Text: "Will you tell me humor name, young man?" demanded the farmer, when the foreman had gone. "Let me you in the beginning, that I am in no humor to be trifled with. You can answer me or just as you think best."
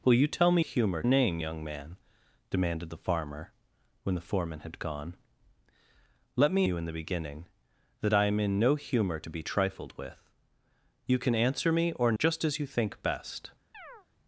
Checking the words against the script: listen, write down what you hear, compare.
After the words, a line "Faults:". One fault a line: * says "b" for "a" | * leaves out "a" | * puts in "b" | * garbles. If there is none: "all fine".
"Will you tell me humor name, young man?" demanded the farmer, when the foreman had gone. "Let me you in the beginning, that I am in no humor to be trifled with. You can answer me or just as you think best."
Faults:
all fine